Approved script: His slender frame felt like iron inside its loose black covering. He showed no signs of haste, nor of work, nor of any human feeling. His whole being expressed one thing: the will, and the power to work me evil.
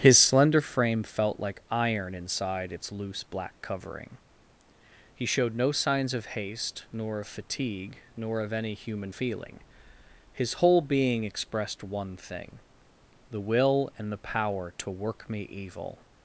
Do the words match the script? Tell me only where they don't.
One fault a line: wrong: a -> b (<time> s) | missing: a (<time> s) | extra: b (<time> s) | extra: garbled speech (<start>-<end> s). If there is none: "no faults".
wrong: work -> fatigue (7.3 s)